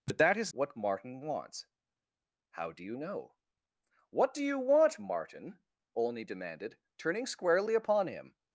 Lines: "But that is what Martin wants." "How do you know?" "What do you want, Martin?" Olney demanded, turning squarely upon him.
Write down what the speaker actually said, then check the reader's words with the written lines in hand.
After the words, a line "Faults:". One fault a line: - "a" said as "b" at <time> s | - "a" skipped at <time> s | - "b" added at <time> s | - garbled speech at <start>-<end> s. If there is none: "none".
"But that is what Martin wants." "How do you know?" "What do you want, Martin?" Olney demanded, turning squarely upon him.
Faults:
none